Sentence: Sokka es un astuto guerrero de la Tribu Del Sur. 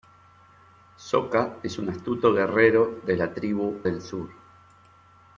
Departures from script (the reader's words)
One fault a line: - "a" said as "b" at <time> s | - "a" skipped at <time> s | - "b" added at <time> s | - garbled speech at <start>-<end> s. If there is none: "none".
none